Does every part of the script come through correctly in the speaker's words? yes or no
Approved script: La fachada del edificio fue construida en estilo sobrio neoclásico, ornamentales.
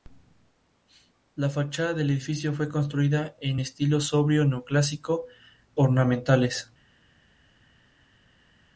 yes